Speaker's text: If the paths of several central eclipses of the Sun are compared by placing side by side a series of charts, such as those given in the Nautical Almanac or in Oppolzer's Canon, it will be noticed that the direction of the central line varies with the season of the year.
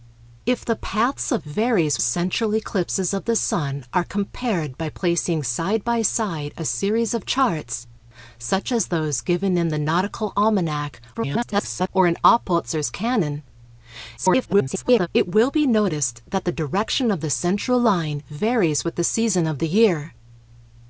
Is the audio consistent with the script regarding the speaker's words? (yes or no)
no